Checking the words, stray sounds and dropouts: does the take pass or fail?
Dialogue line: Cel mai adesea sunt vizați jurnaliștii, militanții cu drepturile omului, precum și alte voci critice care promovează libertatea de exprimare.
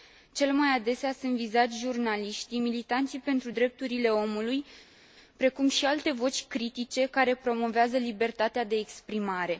fail